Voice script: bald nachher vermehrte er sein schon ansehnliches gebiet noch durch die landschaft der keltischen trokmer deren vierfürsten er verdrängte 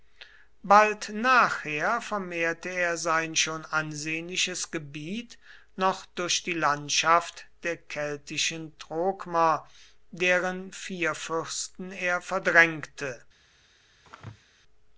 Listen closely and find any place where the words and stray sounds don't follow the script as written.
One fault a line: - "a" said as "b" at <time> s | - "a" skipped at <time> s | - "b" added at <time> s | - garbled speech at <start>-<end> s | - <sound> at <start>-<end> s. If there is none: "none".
- sneeze at 14.0-14.4 s